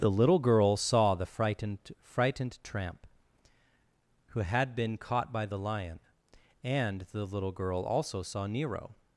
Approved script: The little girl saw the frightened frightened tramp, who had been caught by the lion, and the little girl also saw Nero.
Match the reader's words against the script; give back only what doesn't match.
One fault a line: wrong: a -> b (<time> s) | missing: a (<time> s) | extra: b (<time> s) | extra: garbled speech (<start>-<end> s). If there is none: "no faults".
no faults